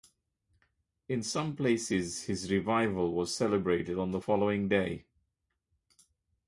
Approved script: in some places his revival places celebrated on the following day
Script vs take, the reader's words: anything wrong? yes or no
yes